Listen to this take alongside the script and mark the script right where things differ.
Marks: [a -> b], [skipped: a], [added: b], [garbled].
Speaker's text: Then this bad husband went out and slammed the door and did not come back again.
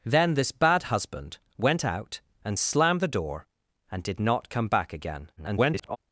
Then this bad husband went out and slammed the door and did not come back again. [garbled]